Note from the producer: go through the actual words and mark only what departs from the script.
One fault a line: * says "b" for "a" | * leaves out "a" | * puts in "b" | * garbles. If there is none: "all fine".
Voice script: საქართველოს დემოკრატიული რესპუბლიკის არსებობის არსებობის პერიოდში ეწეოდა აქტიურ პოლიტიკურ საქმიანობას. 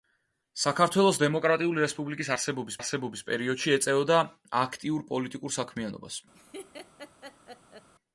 all fine